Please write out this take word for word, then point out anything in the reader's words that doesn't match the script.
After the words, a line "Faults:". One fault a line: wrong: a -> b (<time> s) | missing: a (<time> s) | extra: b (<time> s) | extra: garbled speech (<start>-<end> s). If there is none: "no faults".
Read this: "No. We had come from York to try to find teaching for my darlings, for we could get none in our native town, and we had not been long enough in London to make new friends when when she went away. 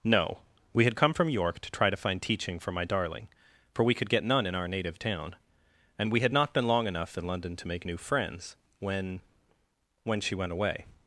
"No. We had come from York to try to find teaching for my darling, for we could get none in our native town, and we had not been long enough in London to make new friends when when she went away.
Faults:
wrong: darlings -> darling (2.9 s)